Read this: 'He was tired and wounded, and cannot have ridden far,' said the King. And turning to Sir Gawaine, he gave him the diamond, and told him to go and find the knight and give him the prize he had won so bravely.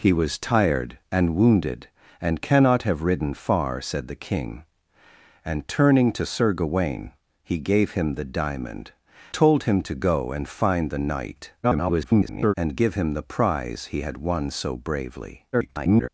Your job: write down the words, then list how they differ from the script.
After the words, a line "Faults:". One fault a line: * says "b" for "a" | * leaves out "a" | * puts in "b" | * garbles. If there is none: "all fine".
'He was tired and wounded, and cannot have ridden far,' said the King. And turning to Sir Gawaine, he gave him the diamond, told him to go and find the knight [garbled] and give him the prize he had won so bravely. [garbled]
Faults:
* leaves out "and"
* garbles
* garbles